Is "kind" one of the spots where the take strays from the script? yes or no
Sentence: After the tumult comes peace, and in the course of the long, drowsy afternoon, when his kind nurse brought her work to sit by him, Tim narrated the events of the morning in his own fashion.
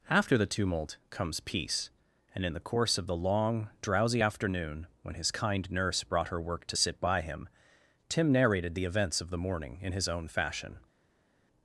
no